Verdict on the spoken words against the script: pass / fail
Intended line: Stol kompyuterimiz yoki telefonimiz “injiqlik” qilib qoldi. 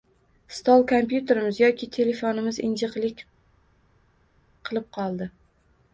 pass